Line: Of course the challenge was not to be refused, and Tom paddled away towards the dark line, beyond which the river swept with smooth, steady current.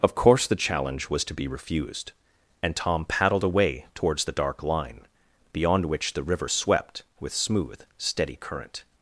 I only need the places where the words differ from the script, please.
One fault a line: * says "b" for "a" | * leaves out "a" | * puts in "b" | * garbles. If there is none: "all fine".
* leaves out "not"